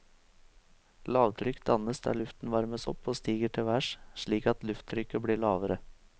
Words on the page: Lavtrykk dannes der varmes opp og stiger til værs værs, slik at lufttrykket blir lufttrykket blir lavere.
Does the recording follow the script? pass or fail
fail